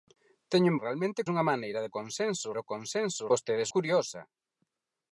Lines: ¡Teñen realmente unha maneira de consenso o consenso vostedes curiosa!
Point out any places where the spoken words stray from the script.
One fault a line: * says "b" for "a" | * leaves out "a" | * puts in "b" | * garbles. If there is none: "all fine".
all fine